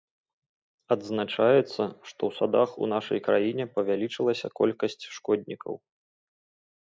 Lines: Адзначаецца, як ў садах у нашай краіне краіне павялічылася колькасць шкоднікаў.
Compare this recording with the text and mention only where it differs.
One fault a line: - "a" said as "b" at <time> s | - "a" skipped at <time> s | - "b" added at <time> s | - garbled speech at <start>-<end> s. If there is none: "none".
- "як" said as "што" at 2.1 s
- "краіне" skipped at 3.6 s